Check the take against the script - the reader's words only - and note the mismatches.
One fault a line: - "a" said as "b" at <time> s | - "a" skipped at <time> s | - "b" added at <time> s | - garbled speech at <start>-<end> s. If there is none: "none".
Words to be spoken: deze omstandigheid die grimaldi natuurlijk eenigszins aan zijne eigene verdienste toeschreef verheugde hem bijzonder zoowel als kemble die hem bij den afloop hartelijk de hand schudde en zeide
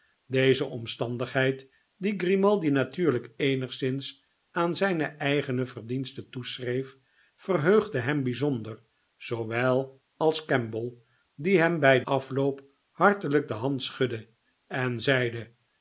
- "den" skipped at 12.0 s